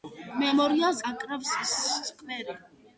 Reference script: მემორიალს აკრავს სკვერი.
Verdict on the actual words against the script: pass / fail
pass